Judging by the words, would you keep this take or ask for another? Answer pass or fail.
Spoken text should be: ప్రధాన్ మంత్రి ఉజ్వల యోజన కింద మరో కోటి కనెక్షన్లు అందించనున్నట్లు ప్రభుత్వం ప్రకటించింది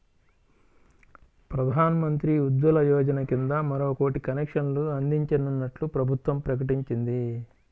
pass